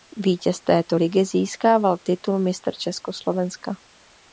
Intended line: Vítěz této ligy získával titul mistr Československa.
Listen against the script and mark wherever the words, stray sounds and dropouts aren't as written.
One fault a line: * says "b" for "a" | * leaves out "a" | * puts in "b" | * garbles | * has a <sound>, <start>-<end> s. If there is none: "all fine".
all fine